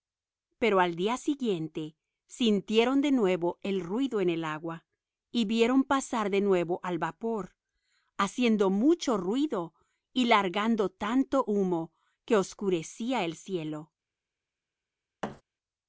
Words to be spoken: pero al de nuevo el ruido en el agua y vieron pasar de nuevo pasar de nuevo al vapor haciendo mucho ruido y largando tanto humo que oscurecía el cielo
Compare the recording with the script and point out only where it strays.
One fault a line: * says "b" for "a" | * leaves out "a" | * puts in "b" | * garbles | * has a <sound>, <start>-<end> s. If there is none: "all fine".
* puts in "día siguiente sintieron"
* leaves out "pasar de nuevo"
* has a thud, 15.2-15.4 s